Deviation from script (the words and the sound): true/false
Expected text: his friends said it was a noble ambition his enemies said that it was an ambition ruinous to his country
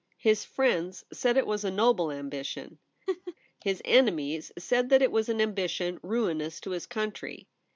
true